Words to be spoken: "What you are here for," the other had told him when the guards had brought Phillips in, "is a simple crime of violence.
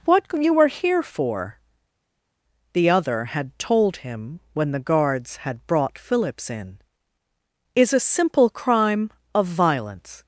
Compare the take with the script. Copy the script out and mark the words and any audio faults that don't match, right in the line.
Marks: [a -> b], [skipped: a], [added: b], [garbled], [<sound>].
"What you [are -> were] here for," the other had told him when the guards had brought Phillips in, "is a simple crime of violence.